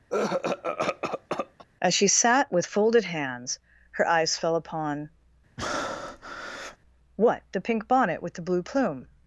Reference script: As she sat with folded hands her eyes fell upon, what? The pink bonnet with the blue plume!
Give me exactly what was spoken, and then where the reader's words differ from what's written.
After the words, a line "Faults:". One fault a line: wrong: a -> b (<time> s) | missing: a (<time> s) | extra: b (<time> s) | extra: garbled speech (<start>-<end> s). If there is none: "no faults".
As she sat with folded hands her eyes fell upon, what? The pink bonnet with the blue plume!
Faults:
no faults